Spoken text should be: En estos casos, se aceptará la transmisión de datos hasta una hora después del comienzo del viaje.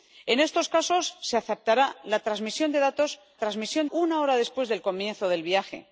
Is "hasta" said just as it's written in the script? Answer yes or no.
no